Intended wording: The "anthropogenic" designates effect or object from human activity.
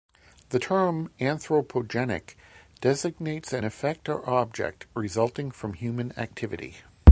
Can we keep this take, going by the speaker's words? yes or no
no